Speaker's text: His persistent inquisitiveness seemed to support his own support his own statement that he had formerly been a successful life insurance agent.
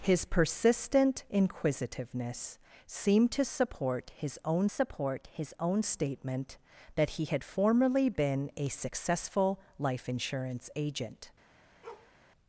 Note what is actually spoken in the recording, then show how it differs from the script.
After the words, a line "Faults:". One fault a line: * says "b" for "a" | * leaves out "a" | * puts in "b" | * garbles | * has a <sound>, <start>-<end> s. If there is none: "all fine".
His persistent inquisitiveness seemed to support his own support his own statement that he had formerly been a successful life insurance agent.
Faults:
* has a bark, 11.8-12.1 s